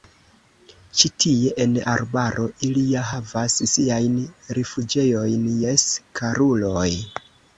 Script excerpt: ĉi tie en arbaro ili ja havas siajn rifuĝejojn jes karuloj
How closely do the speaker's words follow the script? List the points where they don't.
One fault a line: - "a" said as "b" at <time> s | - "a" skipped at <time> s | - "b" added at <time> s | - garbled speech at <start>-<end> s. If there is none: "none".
none